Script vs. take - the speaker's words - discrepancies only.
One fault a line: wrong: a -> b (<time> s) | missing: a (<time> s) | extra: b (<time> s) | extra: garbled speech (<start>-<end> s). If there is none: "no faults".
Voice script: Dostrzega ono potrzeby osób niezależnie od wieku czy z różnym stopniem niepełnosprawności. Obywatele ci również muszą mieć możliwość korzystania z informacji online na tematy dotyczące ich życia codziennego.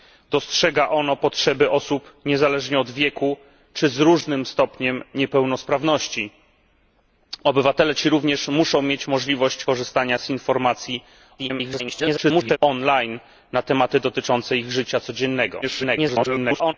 extra: garbled speech (11.4-12.6 s)
extra: garbled speech (15.6-16.7 s)